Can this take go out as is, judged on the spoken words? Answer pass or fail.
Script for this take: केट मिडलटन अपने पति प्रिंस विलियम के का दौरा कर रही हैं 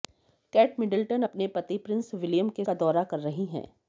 pass